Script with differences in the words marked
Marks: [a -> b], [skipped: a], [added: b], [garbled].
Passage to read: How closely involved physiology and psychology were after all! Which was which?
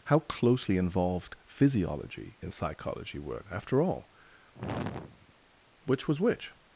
How closely involved physiology [and -> in] psychology were after all! Which was which?